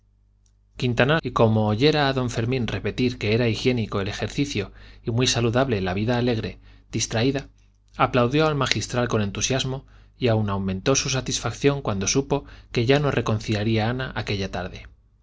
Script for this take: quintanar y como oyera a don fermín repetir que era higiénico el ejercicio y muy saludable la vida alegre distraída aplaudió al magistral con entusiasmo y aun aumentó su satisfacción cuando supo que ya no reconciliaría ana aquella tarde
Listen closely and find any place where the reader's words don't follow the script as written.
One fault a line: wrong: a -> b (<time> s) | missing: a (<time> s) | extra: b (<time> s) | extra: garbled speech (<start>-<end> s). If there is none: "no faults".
no faults